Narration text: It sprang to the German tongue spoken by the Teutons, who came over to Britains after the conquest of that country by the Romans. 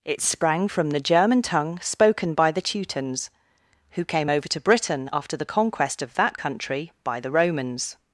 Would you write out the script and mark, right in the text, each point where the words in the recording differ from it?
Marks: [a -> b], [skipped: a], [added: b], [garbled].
It sprang [to -> from] the German tongue spoken by the Teutons, who came over to [Britains -> Britain] after the conquest of that country by the Romans.